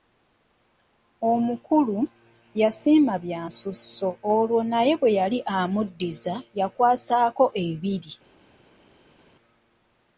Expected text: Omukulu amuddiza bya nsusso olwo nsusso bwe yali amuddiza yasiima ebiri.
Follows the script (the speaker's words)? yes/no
no